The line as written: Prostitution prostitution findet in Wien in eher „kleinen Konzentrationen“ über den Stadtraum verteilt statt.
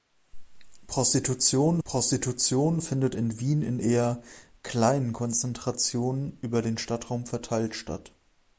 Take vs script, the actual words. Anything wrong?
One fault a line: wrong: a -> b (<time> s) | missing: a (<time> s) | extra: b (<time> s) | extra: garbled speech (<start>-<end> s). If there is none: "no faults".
no faults